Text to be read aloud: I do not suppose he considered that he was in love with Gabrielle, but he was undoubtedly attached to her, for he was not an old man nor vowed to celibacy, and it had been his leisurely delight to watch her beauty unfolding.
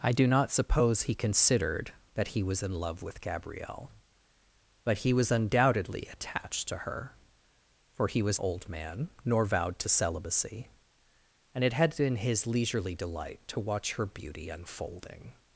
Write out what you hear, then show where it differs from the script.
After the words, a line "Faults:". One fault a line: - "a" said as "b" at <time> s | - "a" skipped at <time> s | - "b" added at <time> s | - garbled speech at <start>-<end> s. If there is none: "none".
I do not suppose he considered that he was in love with Gabrielle, but he was undoubtedly attached to her, for he was old man nor vowed to celibacy, and it had been his leisurely delight to watch her beauty unfolding.
Faults:
- "not an" skipped at 8.4 s